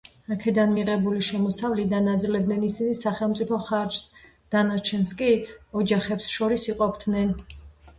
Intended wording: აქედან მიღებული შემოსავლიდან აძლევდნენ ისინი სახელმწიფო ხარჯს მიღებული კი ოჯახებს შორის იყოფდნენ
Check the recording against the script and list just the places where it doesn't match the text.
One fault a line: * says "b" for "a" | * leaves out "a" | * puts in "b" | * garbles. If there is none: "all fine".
* says "დანარჩენს" for "მიღებული"